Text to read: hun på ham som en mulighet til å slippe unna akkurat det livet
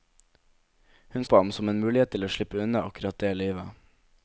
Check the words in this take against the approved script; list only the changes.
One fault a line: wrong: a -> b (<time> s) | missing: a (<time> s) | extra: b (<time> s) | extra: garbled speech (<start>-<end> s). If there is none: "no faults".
no faults